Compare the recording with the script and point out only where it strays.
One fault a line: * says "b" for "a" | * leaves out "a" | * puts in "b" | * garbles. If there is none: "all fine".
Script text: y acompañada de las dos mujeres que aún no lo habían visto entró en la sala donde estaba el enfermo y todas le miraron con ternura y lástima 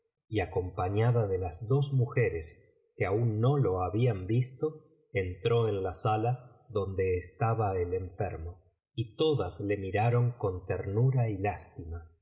all fine